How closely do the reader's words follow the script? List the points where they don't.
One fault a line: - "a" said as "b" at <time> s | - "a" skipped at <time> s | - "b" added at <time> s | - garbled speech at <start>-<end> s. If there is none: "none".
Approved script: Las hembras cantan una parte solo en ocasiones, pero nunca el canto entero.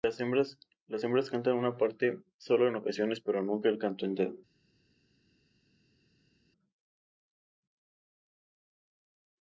none